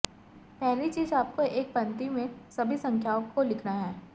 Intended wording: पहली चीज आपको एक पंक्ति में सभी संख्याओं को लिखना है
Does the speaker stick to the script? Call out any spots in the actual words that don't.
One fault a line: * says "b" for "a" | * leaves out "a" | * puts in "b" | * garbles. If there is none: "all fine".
all fine